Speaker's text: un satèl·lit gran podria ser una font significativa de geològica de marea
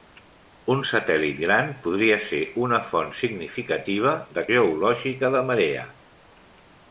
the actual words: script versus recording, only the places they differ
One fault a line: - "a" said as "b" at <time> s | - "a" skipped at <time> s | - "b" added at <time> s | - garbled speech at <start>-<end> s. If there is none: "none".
none